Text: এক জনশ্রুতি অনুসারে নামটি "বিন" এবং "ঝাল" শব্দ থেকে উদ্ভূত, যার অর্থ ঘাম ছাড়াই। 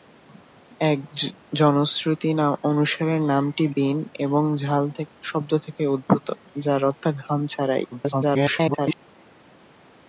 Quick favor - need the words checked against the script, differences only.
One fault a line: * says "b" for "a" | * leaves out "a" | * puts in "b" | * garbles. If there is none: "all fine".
* garbles